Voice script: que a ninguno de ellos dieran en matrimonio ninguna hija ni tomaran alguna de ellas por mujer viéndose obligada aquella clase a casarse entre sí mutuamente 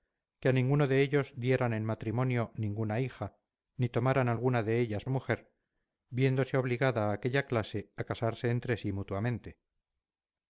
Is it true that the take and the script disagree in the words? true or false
true